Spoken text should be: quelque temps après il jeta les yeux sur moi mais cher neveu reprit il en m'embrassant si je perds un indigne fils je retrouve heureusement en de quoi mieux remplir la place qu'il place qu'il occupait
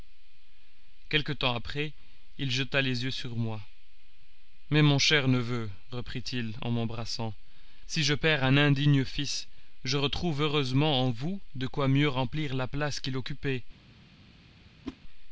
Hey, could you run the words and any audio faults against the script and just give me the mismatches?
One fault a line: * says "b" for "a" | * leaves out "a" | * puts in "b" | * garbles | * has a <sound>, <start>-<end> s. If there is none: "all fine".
* puts in "mon"
* puts in "vous"
* leaves out "place qu'il"
* has a whoosh, 14.8-15.0 s